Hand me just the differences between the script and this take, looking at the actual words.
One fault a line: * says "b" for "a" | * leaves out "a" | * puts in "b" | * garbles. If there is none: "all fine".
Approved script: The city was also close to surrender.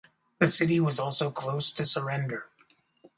all fine